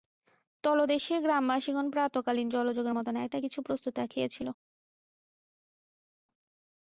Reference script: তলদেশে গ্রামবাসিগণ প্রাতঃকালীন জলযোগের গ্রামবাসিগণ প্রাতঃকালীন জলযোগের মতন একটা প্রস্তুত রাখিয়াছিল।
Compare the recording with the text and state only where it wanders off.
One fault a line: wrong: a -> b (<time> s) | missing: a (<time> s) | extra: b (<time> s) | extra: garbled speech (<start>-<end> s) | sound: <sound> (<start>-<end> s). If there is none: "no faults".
missing: গ্রামবাসিগণ প্রাতঃকালীন জলযোগের (3.0 s)
extra: কিছু (3.4 s)